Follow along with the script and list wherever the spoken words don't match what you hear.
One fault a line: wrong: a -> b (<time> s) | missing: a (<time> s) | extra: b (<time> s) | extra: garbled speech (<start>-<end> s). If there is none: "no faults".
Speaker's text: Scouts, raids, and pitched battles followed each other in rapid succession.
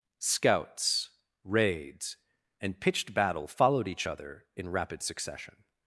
wrong: battles -> battle (3.1 s)